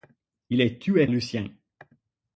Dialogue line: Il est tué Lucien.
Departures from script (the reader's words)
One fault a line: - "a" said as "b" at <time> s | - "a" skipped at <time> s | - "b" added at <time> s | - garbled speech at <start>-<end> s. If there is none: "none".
none